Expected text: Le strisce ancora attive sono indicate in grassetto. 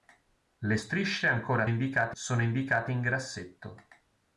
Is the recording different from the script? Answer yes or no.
yes